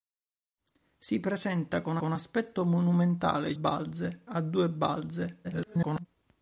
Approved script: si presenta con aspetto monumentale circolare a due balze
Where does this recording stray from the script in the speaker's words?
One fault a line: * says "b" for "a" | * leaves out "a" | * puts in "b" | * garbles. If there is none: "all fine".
* puts in "con"
* says "balze" for "circolare"
* garbles